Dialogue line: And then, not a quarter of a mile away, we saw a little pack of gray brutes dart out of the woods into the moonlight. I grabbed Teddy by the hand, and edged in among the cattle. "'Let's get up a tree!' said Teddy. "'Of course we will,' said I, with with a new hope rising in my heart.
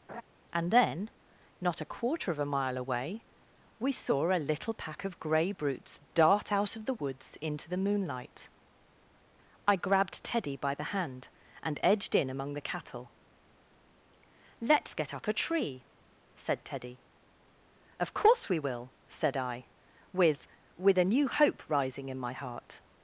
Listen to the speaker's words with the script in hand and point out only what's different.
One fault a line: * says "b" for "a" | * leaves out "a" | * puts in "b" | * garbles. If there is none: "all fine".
all fine